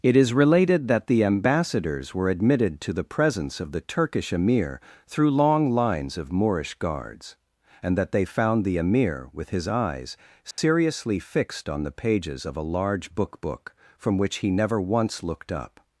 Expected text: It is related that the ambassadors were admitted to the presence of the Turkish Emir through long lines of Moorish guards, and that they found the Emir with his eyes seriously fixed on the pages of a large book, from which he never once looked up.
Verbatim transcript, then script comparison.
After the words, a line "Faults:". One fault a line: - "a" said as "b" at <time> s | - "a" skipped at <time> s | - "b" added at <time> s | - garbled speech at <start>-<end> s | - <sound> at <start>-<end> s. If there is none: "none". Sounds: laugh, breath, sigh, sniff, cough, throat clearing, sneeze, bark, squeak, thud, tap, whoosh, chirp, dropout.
It is related that the ambassadors were admitted to the presence of the Turkish Emir through long lines of Moorish guards, and that they found the Emir with his eyes seriously fixed on the pages of a large book book, from which he never once looked up.
Faults:
- dropout at 10.5-10.6 s
- "book" added at 13.4 s